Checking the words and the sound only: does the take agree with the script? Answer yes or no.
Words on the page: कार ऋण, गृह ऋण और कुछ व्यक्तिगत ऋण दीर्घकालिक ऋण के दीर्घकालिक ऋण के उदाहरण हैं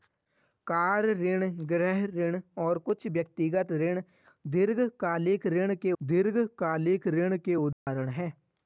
no